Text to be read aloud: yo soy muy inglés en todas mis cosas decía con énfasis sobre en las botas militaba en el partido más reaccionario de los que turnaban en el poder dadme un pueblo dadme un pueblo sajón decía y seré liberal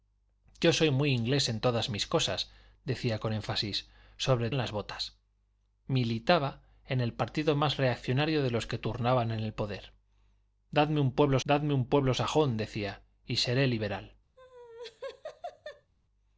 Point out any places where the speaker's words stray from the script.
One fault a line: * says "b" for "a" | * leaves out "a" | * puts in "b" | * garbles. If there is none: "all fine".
all fine